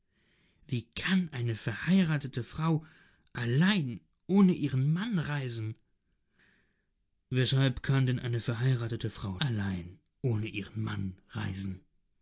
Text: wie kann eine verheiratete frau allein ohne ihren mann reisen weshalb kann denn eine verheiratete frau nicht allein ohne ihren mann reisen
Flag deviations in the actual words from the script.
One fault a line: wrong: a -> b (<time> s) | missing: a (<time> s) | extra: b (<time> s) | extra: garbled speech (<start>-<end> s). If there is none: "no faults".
missing: nicht (9.4 s)